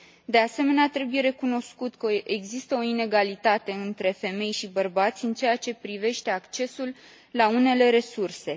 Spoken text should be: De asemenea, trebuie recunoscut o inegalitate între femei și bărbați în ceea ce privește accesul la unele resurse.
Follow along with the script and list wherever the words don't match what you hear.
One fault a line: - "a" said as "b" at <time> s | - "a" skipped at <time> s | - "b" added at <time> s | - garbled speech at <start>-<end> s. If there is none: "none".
- "că există" added at 1.9 s